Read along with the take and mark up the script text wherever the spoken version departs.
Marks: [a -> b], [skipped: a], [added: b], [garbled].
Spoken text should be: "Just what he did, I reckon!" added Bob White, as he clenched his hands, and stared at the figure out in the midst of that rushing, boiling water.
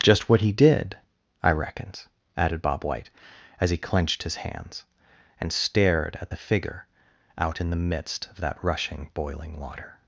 "Just what he did, I [reckon!" -> reckons] added Bob White, as he clenched his hands, and stared at the figure out in the midst of that rushing, boiling water.